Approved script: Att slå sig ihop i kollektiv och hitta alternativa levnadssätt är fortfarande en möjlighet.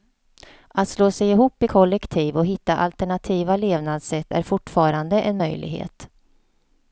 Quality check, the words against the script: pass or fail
pass